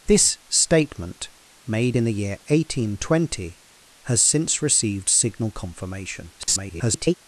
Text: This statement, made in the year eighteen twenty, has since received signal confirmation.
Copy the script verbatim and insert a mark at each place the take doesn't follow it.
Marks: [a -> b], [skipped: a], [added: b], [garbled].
This statement, made in the year eighteen twenty, has since received signal confirmation. [garbled]